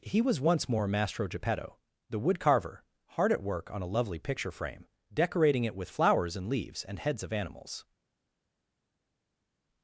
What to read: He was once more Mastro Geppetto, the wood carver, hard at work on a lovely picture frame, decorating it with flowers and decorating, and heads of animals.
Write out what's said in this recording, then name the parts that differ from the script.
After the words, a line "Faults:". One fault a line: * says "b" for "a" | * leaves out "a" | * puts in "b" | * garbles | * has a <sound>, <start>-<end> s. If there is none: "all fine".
He was once more Mastro Geppetto, the wood carver, hard at work on a lovely picture frame, decorating it with flowers and leaves, and heads of animals.
Faults:
* says "leaves" for "decorating"